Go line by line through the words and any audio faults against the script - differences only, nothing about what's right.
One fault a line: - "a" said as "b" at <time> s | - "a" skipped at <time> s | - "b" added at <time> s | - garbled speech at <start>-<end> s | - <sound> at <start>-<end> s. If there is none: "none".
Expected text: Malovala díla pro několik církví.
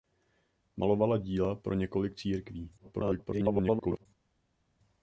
- garbled speech at 2.8-4.1 s